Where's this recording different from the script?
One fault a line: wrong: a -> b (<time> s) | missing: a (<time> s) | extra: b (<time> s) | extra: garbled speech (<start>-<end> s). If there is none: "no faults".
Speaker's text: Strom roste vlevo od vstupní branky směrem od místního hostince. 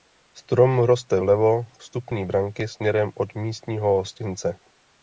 missing: od (1.6 s)